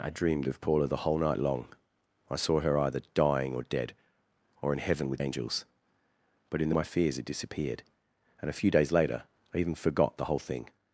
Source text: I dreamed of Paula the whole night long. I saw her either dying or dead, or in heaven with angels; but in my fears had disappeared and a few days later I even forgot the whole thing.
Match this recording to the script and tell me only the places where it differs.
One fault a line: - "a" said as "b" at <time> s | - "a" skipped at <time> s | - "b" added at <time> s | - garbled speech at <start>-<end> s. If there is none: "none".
none